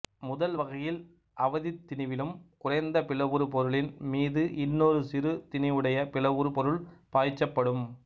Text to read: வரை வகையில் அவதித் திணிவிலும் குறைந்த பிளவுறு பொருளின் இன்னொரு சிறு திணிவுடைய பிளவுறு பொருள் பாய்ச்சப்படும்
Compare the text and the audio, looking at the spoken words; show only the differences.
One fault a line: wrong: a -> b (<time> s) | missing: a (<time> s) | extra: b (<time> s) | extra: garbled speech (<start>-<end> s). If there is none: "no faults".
wrong: வரை -> முதல் (0.2 s)
extra: மீது (4.1 s)